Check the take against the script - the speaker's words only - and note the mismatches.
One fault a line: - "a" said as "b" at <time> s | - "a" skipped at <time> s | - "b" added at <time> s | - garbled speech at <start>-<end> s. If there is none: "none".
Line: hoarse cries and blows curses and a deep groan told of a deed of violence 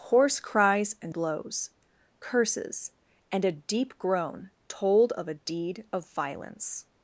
none